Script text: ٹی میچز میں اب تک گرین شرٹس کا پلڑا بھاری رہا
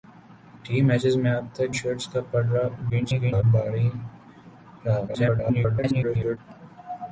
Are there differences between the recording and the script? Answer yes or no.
yes